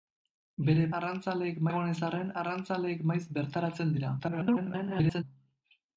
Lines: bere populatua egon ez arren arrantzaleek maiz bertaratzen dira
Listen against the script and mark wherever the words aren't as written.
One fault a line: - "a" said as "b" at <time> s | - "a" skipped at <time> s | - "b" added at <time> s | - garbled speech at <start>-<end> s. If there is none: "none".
- "populatua" said as "arrantzaleek" at 1.0 s
- garbled speech at 4.2-5.2 s